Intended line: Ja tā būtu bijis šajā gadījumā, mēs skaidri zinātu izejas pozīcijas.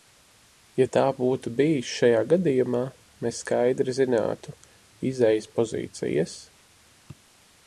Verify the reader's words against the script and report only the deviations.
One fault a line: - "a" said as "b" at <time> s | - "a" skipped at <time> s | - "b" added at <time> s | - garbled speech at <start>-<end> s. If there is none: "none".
none